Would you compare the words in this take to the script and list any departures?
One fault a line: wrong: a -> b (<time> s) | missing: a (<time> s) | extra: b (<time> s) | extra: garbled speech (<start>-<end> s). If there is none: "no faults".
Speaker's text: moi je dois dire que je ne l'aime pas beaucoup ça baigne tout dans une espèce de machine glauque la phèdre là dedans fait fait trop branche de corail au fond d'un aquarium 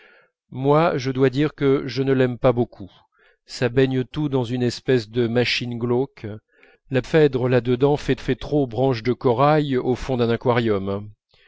no faults